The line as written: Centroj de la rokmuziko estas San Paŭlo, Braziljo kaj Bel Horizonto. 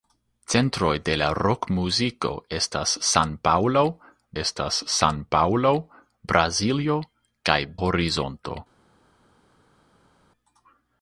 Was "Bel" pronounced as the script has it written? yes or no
no